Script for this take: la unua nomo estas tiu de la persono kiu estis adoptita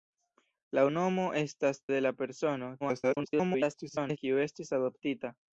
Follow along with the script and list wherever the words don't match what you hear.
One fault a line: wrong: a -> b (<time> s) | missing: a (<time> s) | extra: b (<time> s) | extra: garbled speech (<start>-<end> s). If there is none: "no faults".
missing: unua (0.8 s)
missing: tiu (1.8 s)
extra: garbled speech (2.8-4.2 s)